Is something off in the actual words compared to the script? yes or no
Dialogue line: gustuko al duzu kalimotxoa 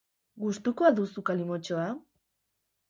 no